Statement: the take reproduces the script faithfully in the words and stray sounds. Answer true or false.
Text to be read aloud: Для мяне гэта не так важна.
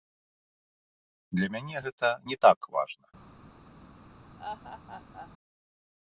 false